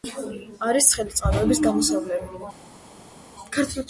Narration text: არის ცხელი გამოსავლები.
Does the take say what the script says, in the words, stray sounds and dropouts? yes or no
no